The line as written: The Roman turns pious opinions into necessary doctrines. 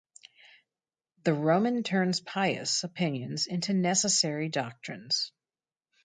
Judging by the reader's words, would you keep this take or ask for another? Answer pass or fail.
pass